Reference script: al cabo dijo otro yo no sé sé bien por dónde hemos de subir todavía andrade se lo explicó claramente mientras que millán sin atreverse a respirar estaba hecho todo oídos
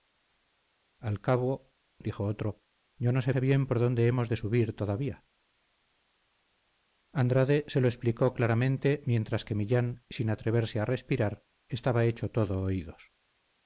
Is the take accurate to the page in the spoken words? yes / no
yes